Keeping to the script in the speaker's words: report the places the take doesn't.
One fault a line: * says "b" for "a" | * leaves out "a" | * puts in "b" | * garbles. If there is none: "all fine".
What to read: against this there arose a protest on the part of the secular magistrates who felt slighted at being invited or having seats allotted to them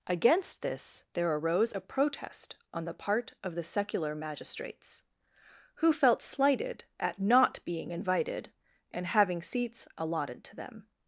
* puts in "not"
* says "and" for "or"